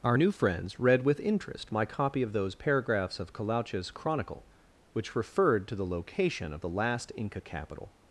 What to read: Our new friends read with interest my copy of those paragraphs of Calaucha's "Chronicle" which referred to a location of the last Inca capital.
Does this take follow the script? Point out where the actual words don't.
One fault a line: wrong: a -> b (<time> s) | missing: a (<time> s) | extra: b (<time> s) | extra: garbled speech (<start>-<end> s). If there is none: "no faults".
wrong: a -> the (5.7 s)